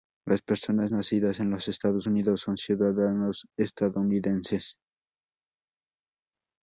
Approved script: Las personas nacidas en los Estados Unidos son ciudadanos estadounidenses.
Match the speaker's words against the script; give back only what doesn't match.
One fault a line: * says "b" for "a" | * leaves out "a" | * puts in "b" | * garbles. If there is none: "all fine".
all fine